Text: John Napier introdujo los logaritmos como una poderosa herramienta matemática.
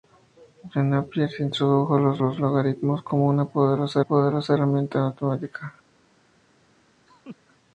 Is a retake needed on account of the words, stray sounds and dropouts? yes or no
yes